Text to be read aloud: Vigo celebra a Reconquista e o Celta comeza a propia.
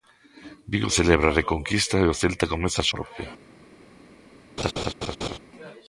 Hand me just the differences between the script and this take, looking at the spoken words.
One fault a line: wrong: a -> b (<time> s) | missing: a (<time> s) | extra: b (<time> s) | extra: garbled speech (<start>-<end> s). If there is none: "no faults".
no faults